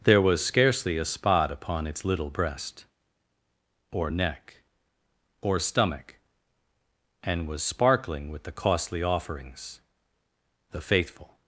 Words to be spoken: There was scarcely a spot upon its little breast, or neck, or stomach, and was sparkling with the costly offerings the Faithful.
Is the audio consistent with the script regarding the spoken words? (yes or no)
yes